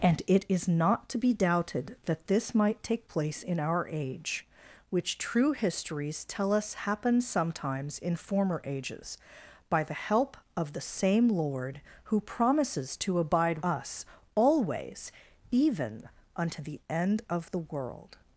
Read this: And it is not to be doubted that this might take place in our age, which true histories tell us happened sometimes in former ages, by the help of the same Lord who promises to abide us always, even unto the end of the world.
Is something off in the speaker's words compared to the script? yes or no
no